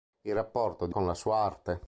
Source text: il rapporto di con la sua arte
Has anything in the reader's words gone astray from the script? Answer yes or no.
no